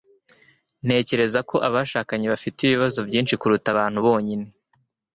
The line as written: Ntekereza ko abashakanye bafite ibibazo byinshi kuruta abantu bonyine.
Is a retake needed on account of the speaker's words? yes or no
no